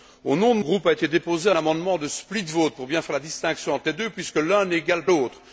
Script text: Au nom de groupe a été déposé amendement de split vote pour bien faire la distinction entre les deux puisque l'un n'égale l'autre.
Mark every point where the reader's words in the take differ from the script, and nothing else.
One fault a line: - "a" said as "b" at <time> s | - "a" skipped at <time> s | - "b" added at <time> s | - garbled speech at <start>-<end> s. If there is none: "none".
none